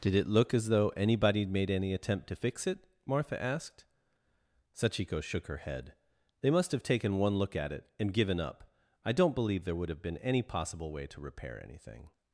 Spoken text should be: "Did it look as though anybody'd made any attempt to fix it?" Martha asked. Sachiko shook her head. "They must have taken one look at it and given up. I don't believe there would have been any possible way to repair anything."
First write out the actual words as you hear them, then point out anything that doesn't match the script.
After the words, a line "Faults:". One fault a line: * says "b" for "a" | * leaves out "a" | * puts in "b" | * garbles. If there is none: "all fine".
"Did it look as though anybody'd made any attempt to fix it?" Martha asked. Sachiko shook her head. "They must have taken one look at it and given up. I don't believe there would have been any possible way to repair anything."
Faults:
all fine